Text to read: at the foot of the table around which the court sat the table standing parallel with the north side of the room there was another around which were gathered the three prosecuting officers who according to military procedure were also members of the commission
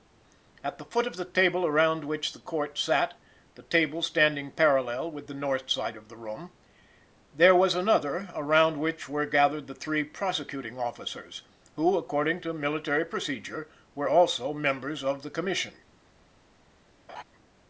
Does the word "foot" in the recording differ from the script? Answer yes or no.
no